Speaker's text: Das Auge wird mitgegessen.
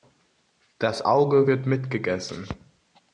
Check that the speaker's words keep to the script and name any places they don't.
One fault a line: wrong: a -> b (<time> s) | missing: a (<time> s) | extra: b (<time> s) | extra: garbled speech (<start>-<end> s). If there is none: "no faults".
no faults